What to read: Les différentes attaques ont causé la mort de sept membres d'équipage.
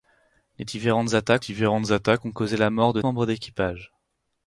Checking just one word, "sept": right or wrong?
wrong